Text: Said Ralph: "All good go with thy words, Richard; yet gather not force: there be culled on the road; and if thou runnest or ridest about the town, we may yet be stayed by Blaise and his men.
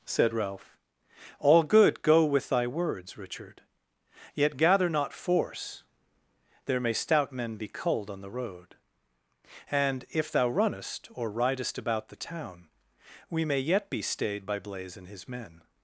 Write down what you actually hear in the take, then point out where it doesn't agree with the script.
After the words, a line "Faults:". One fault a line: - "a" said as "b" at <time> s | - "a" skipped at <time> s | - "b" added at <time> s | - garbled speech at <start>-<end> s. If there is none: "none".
Said Ralph: "All good go with thy words, Richard; yet gather not force: there may stout men be culled on the road; and if thou runnest or ridest about the town, we may yet be stayed by Blaise and his men.
Faults:
- "may stout men" added at 6.8 s